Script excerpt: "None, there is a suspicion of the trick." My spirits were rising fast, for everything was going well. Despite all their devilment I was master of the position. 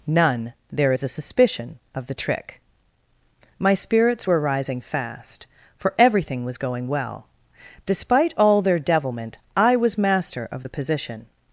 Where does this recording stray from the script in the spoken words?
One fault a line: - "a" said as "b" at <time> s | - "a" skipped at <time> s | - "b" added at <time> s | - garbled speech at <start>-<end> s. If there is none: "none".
none